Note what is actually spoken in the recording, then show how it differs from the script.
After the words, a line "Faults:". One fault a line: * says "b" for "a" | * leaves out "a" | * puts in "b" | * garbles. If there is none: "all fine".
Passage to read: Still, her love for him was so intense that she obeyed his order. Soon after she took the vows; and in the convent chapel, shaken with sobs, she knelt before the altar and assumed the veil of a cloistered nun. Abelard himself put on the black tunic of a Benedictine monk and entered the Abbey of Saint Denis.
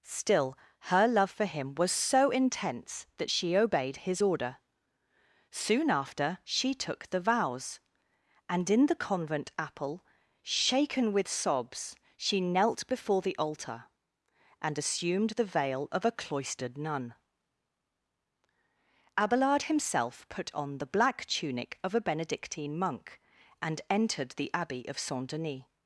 Still, her love for him was so intense that she obeyed his order. Soon after she took the vows; and in the convent apple, shaken with sobs, she knelt before the altar and assumed the veil of a cloistered nun. Abelard himself put on the black tunic of a Benedictine monk and entered the Abbey of Saint Denis.
Faults:
* says "apple" for "chapel"